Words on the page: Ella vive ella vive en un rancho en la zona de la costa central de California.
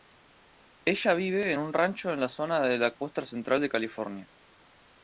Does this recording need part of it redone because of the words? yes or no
yes